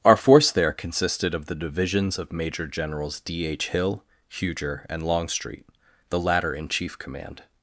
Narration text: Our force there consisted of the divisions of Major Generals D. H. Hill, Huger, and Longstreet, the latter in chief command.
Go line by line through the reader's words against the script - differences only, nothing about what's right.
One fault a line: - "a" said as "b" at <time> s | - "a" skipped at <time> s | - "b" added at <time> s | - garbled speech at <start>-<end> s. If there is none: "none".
none